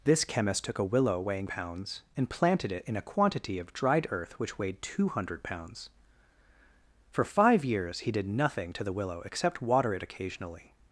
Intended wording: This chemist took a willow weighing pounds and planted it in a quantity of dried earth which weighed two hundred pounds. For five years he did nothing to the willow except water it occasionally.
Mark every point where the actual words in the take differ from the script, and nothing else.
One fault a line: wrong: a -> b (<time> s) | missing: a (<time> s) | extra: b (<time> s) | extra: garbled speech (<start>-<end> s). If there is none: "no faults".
no faults